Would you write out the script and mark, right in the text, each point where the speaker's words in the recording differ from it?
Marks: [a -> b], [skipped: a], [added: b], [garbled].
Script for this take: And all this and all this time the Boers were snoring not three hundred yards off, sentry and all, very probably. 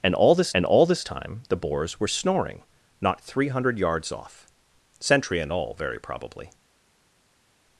And all this and all this time the Boers were snoring not three hundred yards off, sentry and all, very probably.